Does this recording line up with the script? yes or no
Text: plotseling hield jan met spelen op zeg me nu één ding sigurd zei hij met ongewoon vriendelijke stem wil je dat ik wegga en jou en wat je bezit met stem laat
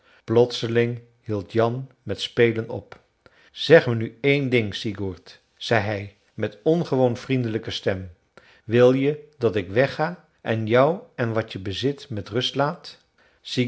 no